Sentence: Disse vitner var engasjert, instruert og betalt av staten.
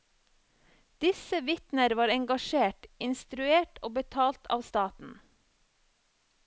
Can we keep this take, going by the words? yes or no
yes